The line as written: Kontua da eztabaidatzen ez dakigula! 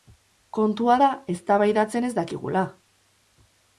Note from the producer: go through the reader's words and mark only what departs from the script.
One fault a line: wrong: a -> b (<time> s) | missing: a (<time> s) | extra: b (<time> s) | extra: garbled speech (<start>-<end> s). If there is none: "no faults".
no faults